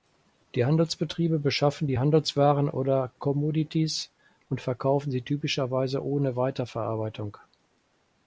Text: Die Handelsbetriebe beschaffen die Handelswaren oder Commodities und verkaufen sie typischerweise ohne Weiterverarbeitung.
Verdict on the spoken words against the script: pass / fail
pass